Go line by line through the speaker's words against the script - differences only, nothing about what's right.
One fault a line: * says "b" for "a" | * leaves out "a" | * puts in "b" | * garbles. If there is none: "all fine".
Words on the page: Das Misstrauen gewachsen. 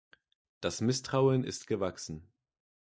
* puts in "ist"